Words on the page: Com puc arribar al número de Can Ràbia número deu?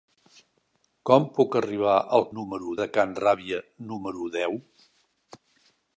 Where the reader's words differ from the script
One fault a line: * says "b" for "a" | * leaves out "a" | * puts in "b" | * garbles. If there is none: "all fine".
all fine